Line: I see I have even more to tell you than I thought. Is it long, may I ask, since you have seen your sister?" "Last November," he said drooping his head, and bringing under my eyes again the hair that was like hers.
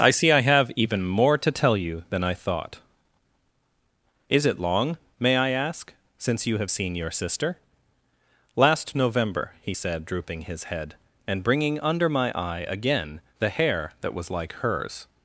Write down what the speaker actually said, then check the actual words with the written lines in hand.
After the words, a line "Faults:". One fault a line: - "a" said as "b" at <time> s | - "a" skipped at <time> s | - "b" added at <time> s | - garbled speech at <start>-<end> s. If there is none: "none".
I see I have even more to tell you than I thought. Is it long, may I ask, since you have seen your sister?" "Last November," he said drooping his head, and bringing under my eye again the hair that was like hers.
Faults:
- "eyes" said as "eye" at 12.4 s